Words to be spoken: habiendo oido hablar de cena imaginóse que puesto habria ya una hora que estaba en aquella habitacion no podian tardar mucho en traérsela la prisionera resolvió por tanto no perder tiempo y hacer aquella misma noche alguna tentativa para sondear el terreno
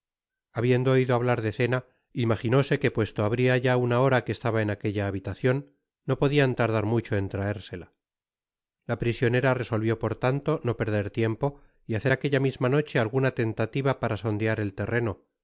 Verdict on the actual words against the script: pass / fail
pass